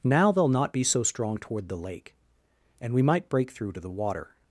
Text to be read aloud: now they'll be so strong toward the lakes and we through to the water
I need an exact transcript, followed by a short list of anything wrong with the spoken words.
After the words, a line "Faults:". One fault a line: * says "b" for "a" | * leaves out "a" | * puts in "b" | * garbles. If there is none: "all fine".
now they'll not be so strong toward the lake and we might break through to the water
Faults:
* puts in "not"
* says "lake" for "lakes"
* puts in "might break"